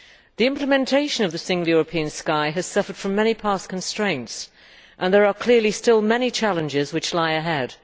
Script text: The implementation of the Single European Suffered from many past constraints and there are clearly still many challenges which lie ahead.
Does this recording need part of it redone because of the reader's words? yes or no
yes